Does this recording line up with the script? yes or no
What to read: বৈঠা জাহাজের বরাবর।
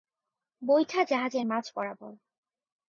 no